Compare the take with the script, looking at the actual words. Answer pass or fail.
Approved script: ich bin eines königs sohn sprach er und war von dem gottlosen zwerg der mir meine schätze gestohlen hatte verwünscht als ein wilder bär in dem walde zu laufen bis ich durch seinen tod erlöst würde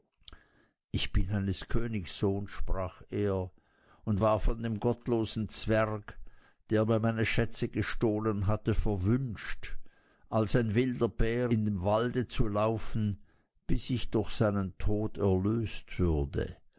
pass